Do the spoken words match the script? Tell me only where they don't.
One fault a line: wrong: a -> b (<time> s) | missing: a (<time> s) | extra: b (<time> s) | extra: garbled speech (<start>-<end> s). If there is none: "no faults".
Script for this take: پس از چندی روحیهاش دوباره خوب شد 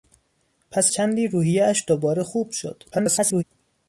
missing: از (0.9 s)
extra: garbled speech (2.9-3.4 s)